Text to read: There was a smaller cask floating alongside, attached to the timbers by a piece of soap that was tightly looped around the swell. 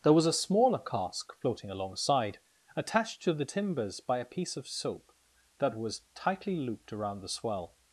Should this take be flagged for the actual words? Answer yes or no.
no